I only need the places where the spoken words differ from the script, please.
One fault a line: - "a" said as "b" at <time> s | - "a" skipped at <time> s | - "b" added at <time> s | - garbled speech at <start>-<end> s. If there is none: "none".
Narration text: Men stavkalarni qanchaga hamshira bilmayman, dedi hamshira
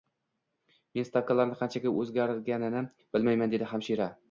- "hamshira" said as "o`zgarganini" at 2.0 s